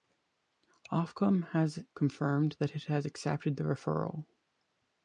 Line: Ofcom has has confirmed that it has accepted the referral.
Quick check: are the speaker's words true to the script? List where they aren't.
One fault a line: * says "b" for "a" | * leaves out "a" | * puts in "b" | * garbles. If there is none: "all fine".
* leaves out "has"